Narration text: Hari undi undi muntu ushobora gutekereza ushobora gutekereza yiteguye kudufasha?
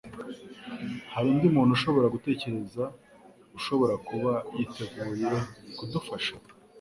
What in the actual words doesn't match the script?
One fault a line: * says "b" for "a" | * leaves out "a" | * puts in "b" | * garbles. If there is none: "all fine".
* leaves out "undi"
* says "kuba" for "gutekereza"